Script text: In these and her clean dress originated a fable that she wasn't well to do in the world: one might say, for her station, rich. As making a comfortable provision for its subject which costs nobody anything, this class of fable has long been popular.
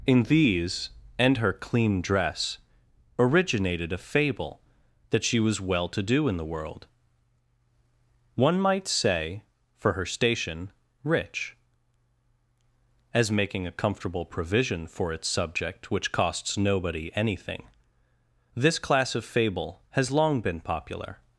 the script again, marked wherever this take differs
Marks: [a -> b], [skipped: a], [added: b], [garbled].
In these and her clean dress originated a fable that she [wasn't -> was] well to do in the world: one might say, for her station, rich. As making a comfortable provision for its subject which costs nobody anything, this class of fable has long been popular.